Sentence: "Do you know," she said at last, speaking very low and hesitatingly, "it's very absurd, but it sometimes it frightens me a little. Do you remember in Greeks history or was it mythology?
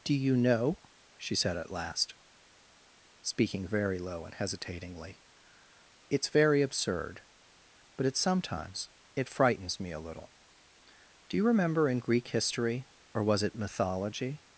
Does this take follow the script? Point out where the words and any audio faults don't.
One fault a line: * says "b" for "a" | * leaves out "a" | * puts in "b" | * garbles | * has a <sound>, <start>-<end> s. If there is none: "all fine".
* says "Greek" for "Greeks"